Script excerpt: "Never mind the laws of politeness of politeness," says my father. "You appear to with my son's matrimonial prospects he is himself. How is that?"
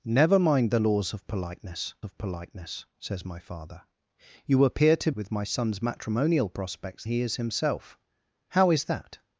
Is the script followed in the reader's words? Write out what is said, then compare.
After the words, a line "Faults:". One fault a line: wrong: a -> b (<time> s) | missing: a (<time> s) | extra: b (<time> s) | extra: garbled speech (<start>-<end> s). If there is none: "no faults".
"Never mind the laws of politeness of politeness," says my father. "You appear to with my son's matrimonial prospects he is himself. How is that?"
Faults:
no faults